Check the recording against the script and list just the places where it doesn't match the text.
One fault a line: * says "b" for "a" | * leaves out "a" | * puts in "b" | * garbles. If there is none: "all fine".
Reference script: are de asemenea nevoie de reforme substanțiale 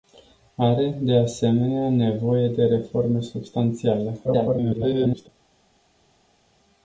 * garbles